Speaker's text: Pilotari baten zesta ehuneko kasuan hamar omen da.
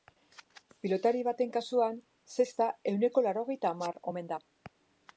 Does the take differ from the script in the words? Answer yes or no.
yes